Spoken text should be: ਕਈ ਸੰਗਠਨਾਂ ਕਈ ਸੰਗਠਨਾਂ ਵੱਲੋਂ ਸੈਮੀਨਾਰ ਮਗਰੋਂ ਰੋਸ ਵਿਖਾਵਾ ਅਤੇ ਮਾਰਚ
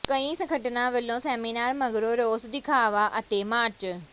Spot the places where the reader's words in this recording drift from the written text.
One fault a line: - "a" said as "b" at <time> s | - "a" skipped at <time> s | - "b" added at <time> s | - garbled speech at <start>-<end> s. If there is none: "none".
- "ਕਈ ਸੰਗਠਨਾਂ" skipped at 0.9 s